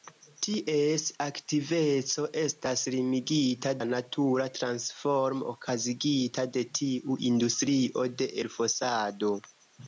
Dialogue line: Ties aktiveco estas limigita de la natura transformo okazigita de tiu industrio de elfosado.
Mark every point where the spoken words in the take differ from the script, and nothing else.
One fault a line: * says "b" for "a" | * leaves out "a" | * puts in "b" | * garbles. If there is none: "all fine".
* leaves out "de"